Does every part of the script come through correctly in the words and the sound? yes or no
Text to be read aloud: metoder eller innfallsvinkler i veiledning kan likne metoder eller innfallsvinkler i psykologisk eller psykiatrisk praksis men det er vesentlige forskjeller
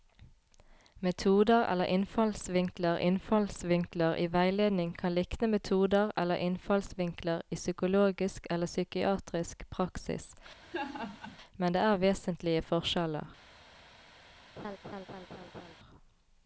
no